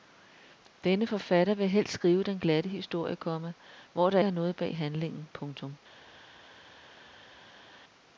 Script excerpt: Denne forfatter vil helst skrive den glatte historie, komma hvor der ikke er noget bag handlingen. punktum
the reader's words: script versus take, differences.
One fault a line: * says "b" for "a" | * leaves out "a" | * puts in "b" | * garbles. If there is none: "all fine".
* leaves out "ikke"